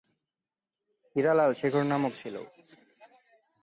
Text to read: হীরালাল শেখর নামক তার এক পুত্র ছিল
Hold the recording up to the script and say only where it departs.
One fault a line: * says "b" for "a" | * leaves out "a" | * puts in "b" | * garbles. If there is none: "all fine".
* leaves out "তার এক পুত্র"